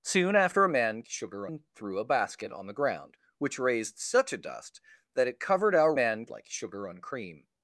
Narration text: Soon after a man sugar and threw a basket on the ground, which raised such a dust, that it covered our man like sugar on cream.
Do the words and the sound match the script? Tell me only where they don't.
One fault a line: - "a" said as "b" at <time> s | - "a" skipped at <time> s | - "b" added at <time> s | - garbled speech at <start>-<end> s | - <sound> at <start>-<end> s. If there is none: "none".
none